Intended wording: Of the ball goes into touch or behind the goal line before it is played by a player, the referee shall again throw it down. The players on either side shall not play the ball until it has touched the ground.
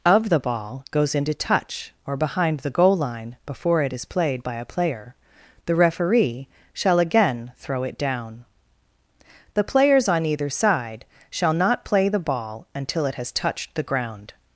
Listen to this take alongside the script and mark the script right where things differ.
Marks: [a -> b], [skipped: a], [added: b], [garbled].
Of the ball goes into touch or behind the goal line before it is played by a player, the referee shall again throw it down. The players on either side shall not play the ball until it has touched the ground.